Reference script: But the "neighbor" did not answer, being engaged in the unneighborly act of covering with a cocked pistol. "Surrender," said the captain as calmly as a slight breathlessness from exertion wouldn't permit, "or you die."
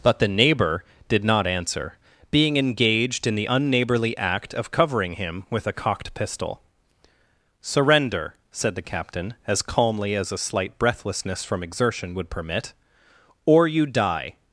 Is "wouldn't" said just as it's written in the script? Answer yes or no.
no